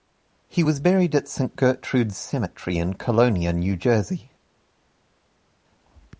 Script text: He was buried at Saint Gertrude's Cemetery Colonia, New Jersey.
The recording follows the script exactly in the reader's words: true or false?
false